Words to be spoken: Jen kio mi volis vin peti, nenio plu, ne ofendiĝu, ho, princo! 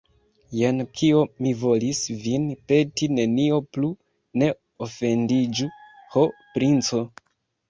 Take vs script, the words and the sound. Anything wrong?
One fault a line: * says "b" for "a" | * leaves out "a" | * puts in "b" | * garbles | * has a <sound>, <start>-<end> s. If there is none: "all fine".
all fine